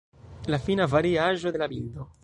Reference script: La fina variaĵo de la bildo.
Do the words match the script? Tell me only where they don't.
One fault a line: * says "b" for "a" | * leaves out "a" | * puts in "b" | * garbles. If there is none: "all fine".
all fine